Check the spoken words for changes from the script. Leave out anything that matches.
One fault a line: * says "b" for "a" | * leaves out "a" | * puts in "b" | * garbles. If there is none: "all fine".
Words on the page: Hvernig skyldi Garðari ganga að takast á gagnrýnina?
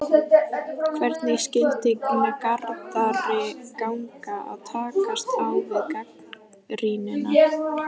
* puts in "við"